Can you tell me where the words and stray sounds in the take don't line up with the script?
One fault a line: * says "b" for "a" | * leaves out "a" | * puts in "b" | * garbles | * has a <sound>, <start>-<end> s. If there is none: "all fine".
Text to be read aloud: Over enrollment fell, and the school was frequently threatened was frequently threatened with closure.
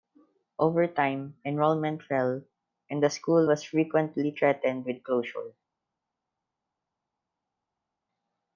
* puts in "time"
* leaves out "was frequently threatened"